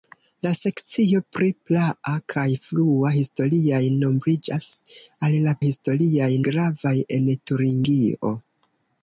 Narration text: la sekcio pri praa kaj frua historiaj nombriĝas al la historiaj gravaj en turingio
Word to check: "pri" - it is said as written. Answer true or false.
true